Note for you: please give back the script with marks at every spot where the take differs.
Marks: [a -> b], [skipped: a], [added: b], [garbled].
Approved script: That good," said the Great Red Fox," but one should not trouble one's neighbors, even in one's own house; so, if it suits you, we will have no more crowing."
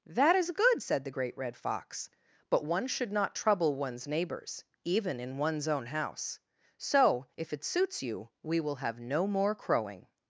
That [added: is] good," said the Great Red Fox," but one should not trouble one's neighbors, even in one's own house; so, if it suits you, we will have no more crowing."